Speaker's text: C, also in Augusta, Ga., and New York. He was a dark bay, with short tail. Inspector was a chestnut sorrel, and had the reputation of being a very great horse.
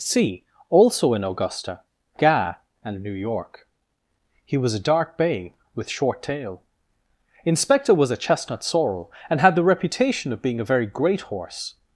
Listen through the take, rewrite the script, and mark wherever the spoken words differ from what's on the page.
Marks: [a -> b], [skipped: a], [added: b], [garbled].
C, also in Augusta, Ga., and New York. He was a dark bay, with short tail. Inspector was a chestnut sorrel, and had the reputation of being a very great horse.